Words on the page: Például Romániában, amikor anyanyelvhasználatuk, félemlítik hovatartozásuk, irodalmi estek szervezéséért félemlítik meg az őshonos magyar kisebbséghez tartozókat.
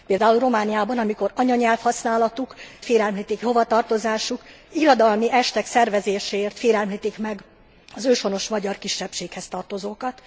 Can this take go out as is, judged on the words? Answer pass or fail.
pass